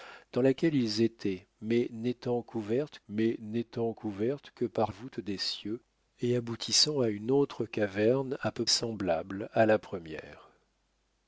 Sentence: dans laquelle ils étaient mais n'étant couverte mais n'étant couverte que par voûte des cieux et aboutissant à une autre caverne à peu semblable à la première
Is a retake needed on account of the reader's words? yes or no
no